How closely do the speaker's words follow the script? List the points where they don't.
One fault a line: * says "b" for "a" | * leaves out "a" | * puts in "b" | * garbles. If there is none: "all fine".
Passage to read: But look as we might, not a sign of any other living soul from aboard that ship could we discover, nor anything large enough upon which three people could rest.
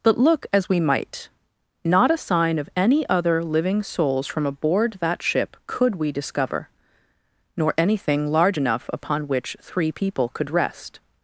* says "souls" for "soul"